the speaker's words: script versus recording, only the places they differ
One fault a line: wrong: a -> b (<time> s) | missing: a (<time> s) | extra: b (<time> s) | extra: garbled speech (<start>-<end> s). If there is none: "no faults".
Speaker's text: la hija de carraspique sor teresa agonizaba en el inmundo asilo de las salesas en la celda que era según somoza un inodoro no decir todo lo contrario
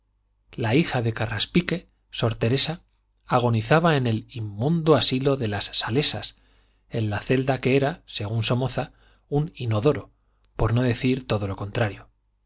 extra: por (10.6 s)